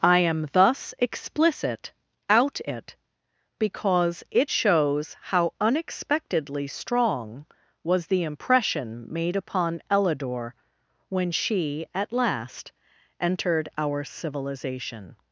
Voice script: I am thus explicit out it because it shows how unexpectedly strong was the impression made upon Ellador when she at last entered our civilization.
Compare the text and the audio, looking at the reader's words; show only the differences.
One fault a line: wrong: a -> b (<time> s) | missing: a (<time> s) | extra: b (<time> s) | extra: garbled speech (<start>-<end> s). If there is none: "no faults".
no faults